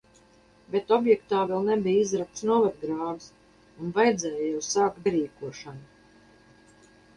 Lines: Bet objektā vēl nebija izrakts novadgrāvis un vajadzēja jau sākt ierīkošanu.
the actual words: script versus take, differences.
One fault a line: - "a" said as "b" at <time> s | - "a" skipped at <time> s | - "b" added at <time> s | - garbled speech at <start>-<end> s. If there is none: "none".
none